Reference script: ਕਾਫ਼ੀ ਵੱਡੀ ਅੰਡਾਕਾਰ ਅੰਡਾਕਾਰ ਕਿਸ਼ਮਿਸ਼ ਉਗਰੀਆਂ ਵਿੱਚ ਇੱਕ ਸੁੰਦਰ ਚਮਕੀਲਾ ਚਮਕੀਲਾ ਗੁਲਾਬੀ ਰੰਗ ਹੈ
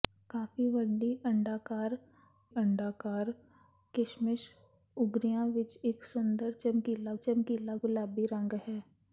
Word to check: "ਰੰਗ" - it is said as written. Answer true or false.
true